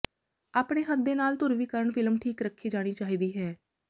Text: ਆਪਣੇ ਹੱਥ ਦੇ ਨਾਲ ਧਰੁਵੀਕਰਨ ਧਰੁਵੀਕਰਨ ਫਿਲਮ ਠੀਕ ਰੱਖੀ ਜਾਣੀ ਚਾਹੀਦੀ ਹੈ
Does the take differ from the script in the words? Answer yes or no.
yes